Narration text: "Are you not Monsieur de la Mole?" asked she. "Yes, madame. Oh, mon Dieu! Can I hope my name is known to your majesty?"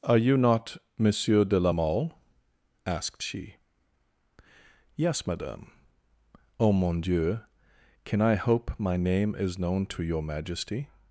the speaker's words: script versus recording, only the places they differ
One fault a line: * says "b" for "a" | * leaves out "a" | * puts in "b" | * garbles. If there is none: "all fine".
all fine